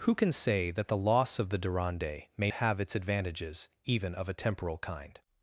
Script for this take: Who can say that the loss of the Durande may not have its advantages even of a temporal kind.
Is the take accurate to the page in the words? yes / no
no